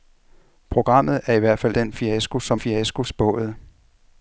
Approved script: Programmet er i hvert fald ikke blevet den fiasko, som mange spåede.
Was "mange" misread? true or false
true